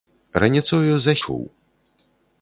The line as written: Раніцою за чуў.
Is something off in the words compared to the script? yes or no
no